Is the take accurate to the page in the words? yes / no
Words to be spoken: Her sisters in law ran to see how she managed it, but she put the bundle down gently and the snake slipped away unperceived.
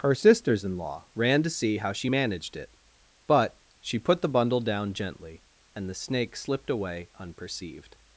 yes